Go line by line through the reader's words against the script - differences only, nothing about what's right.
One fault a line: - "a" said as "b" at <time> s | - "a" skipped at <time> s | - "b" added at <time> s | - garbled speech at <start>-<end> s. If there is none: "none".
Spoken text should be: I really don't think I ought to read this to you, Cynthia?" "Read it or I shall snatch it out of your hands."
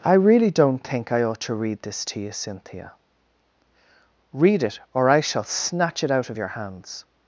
none